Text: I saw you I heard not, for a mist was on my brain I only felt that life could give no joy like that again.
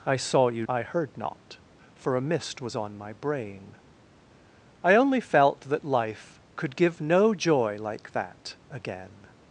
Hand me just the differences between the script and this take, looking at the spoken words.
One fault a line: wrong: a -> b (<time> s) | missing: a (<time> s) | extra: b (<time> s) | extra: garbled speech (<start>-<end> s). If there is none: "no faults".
no faults